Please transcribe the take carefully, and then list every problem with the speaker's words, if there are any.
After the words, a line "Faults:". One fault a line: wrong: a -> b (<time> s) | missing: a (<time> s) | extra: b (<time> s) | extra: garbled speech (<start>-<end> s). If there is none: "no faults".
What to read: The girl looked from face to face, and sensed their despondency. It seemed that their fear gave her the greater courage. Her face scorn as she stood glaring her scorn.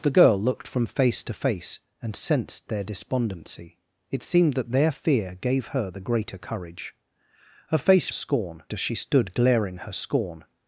The girl looked from face to face, and sensed their despondency. It seemed that their fear gave her the greater courage. Her face scorn as she stood glaring her scorn.
Faults:
no faults